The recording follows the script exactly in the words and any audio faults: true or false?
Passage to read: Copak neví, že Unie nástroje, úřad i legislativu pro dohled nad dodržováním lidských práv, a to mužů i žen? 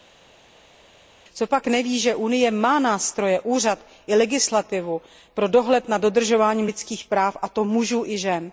false